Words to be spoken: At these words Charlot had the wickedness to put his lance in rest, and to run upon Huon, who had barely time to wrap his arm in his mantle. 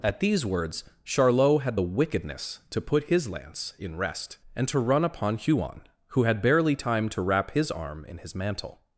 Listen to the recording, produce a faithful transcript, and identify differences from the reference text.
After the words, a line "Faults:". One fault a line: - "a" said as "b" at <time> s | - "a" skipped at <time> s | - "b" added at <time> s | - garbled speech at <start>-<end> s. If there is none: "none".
At these words Charlot had the wickedness to put his lance in rest, and to run upon Huon, who had barely time to wrap his arm in his mantle.
Faults:
none